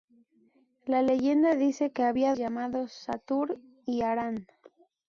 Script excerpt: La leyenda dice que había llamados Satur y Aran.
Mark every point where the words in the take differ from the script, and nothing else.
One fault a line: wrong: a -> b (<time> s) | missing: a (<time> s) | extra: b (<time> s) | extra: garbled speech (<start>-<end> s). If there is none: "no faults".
no faults